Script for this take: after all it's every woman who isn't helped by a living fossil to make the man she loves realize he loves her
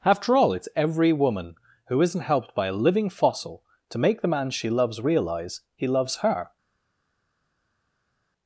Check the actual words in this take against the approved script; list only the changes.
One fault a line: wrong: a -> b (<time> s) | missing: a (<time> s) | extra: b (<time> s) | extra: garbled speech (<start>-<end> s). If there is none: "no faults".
no faults